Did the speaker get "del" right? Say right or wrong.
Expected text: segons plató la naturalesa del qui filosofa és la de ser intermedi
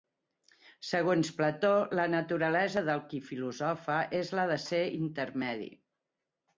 right